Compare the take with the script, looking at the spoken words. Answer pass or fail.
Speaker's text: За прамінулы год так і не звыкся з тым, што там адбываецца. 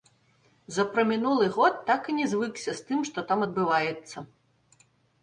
pass